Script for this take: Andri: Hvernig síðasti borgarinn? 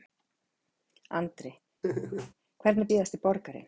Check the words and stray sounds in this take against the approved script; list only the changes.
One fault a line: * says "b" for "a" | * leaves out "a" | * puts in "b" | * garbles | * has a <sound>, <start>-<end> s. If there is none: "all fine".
* has a laugh, 1.8-2.3 s